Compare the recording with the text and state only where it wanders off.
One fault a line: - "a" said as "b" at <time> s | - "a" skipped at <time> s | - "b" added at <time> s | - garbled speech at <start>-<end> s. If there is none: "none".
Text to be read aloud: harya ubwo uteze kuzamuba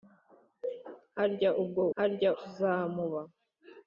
- "uteze" said as "harya" at 2.0 s